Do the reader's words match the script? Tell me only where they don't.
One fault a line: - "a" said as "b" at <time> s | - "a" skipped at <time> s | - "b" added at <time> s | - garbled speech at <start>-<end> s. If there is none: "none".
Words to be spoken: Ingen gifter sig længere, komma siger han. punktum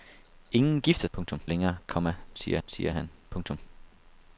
- "sig" said as "punktum" at 1.1 s
- "siger" added at 2.7 s